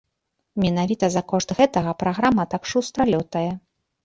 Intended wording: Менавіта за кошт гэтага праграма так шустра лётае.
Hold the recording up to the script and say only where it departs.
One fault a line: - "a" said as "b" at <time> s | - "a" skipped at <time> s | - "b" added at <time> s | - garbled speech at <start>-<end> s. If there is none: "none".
none